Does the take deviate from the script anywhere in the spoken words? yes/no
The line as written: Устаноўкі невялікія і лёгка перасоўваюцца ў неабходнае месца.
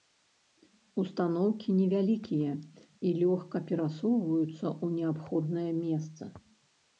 no